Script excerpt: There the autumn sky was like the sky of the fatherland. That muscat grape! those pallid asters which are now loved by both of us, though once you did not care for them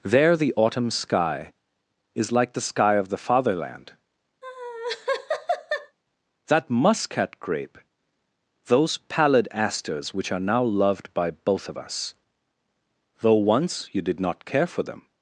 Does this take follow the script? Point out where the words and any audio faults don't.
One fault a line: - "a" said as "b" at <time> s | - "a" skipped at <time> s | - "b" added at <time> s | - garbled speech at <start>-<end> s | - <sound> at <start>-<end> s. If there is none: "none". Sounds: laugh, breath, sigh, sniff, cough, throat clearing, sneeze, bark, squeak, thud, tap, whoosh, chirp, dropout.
- "was" said as "is" at 2.2 s
- laugh at 4.4-6.0 s